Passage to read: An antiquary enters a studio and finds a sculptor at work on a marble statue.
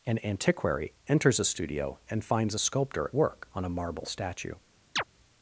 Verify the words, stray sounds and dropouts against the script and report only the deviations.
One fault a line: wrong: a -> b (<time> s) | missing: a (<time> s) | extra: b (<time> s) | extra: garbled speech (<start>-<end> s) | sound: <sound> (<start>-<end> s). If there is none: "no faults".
missing: at (3.1 s)
sound: chirp (5.0-5.0 s)